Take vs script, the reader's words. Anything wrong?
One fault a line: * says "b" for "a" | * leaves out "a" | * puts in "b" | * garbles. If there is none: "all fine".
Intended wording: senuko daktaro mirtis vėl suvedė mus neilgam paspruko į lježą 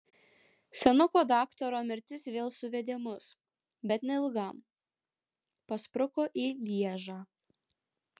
* puts in "bet"